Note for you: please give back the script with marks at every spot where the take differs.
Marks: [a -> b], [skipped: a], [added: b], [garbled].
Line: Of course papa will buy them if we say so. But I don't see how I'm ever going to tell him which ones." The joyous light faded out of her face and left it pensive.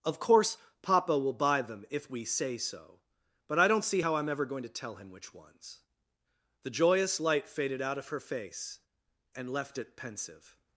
Of course papa will buy them if we say so. But I don't see how I'm ever going to tell him which ones." The joyous light faded out of her face and left it pensive.